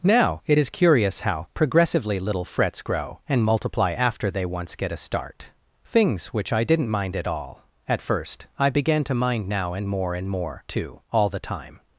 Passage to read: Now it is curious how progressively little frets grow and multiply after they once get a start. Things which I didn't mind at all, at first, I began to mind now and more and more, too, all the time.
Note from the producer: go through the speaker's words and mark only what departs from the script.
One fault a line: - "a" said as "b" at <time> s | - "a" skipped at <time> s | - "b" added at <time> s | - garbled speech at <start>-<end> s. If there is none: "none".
none